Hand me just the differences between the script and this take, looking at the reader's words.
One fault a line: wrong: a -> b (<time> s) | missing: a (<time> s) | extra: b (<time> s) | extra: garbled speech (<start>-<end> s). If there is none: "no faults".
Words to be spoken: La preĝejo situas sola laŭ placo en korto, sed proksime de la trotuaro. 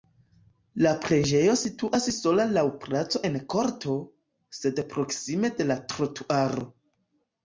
no faults